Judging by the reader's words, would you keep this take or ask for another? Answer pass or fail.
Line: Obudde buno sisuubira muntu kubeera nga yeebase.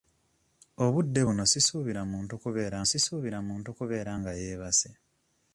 fail